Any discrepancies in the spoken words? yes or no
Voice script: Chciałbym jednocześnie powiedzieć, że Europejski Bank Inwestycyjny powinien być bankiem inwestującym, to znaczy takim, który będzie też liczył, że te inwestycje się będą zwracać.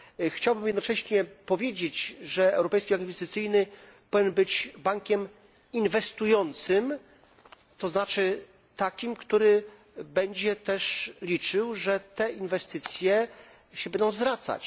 no